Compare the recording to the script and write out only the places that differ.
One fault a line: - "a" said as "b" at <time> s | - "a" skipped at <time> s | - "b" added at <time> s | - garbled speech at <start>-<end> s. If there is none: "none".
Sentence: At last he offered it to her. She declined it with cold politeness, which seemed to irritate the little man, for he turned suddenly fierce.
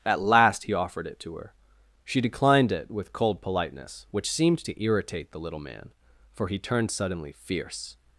none